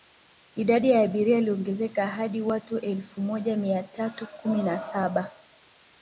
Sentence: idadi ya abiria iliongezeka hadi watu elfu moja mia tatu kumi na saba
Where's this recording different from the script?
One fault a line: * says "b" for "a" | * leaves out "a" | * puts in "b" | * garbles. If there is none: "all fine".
all fine